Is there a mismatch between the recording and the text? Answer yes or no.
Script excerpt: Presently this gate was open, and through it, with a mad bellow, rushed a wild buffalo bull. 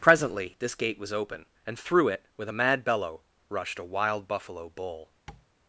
no